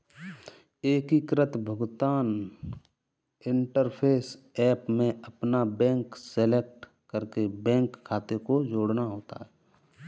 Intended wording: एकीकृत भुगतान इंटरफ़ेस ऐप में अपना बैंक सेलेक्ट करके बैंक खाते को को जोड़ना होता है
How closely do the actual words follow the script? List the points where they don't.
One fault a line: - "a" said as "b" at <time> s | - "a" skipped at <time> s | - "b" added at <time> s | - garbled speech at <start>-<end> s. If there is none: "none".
- "को" skipped at 8.6 s